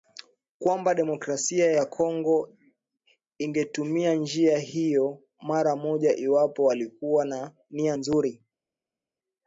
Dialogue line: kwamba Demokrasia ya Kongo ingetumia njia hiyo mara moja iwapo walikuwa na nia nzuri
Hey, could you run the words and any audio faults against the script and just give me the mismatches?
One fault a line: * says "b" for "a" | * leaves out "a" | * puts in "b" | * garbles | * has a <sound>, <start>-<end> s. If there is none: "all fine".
all fine